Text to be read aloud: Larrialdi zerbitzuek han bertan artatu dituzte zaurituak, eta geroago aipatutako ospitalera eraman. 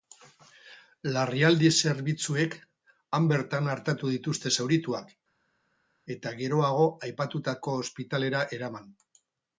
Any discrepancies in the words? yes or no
no